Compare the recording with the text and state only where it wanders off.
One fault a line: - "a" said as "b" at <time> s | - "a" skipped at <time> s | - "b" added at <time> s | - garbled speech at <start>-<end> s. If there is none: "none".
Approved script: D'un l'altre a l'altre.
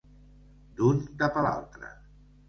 - "l'altre" said as "cap" at 1.2 s